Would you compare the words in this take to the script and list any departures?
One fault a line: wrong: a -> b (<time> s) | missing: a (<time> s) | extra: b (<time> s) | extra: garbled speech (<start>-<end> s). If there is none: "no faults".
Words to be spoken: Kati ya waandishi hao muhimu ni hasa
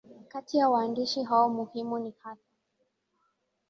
no faults